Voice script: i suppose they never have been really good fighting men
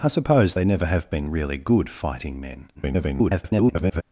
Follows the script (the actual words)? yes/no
no